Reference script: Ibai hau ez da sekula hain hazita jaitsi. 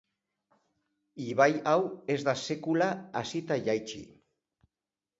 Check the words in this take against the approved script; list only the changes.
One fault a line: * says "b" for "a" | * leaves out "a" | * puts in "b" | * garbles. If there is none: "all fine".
* leaves out "hain"